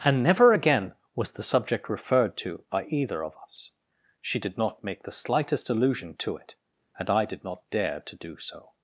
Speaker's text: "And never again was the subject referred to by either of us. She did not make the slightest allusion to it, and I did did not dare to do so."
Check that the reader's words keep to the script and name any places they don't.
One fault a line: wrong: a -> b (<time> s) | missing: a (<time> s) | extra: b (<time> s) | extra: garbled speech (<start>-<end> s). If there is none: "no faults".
missing: did (7.4 s)